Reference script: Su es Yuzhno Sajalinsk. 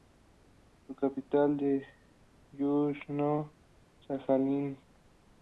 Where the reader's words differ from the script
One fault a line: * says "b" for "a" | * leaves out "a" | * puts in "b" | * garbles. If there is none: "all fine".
* puts in "capital"